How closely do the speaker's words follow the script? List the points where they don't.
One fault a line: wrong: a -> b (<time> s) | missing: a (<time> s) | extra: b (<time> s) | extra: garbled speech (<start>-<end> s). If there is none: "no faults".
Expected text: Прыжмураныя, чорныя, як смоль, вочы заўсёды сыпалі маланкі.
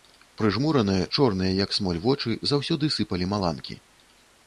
no faults